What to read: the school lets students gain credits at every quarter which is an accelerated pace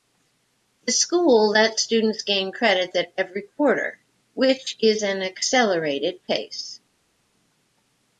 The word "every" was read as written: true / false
true